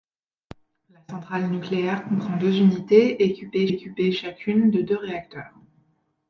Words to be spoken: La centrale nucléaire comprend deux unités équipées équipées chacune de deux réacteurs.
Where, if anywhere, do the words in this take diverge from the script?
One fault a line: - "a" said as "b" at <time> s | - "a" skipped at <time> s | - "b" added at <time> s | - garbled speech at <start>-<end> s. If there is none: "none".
none